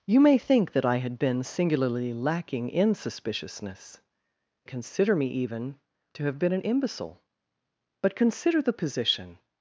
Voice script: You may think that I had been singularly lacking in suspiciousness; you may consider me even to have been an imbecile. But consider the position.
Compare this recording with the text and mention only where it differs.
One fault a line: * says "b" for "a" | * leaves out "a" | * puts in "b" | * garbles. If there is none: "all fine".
* leaves out "you may"